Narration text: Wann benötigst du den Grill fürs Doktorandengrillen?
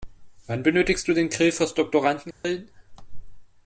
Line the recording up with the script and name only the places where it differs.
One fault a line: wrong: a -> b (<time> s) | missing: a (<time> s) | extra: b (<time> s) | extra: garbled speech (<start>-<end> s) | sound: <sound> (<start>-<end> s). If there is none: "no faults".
sound: dropout (2.3-2.4 s)